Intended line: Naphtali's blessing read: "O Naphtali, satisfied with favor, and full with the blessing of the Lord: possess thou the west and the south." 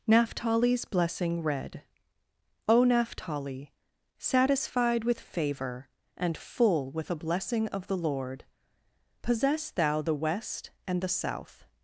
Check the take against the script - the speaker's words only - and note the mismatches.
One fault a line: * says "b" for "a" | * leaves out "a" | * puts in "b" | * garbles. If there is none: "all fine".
* says "a" for "the"